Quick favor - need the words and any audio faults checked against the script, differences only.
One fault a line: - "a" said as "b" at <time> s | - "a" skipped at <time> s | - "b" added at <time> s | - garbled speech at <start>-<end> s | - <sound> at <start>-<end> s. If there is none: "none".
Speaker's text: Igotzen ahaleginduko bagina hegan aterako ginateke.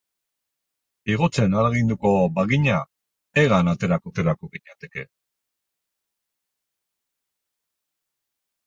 - "aterako" added at 4.1 s